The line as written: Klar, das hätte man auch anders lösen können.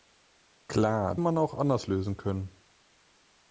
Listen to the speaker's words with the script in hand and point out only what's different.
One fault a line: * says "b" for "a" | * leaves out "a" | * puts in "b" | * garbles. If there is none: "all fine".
* leaves out "das hätte"